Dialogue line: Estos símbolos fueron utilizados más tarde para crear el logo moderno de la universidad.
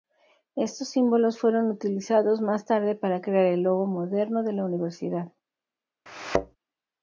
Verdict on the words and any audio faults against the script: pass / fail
fail